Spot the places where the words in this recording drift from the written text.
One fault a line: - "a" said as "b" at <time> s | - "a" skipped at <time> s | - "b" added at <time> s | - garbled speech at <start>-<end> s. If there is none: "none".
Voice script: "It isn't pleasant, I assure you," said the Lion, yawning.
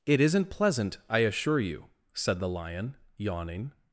none